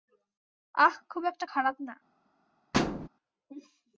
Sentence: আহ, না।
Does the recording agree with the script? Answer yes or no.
no